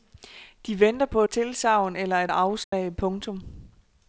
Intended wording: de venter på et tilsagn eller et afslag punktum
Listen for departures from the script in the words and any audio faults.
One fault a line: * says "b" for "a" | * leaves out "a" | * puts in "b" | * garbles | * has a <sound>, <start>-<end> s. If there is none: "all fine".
* leaves out "et"
* has a dropout, 2.6-2.7 s